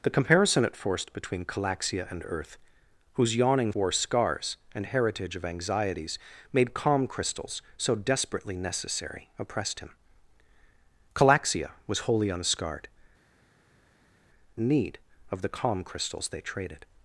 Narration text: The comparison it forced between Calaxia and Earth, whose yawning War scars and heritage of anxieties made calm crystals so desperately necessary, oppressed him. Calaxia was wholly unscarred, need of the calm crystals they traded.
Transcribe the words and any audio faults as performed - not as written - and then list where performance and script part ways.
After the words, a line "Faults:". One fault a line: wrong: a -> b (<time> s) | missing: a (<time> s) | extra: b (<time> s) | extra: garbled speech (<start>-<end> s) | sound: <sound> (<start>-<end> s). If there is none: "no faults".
The comparison it forced between Calaxia and Earth, whose yawning War scars and heritage of anxieties made calm crystals so desperately necessary, oppressed him. Calaxia was wholly unscarred, need of the calm crystals they traded.
Faults:
no faults